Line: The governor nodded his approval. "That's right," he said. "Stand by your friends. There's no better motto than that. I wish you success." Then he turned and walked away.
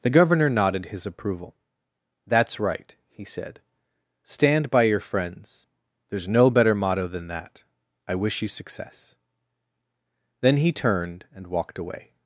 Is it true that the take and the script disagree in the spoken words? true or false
false